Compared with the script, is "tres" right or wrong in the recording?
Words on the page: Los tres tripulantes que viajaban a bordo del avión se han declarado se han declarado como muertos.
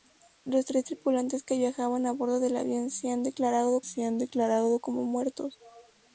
right